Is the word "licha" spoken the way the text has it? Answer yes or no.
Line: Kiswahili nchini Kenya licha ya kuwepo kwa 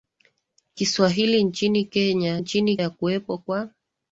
no